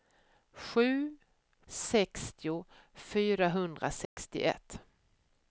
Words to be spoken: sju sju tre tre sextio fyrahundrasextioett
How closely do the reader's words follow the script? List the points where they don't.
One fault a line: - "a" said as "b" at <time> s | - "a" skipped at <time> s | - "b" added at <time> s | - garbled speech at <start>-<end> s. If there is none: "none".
- "sju tre tre" skipped at 1.2 s